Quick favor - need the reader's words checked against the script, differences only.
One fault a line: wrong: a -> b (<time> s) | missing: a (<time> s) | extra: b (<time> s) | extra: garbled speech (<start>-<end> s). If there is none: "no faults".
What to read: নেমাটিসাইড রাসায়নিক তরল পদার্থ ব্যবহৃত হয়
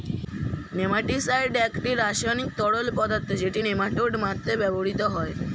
extra: একটি (1.7 s)
extra: যেটি নেমাটোড মারতে (3.4 s)